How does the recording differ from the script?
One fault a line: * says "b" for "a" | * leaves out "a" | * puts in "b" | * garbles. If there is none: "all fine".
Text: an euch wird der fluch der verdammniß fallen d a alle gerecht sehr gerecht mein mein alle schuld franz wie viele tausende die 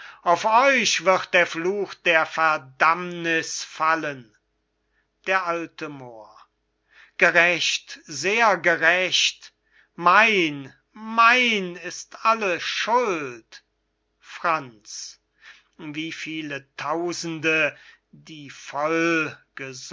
* says "auf" for "an"
* says "moor" for "alle"
* puts in "ist"